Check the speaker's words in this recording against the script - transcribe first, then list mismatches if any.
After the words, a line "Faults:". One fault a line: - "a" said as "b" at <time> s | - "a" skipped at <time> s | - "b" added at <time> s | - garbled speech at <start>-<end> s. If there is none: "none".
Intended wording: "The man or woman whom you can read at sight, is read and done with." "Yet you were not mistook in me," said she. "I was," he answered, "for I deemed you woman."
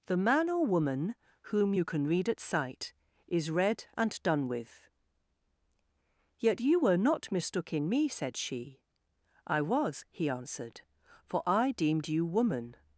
"The man or woman whom you can read at sight, is read and done with." "Yet you were not mistook in me," said she. "I was," he answered, "for I deemed you woman."
Faults:
none